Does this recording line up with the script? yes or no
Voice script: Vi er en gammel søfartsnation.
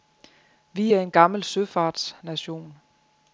yes